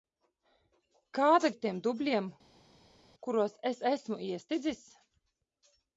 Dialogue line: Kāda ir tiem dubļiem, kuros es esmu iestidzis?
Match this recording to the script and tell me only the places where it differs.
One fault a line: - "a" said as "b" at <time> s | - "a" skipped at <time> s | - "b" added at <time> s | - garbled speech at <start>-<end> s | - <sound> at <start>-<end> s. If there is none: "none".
none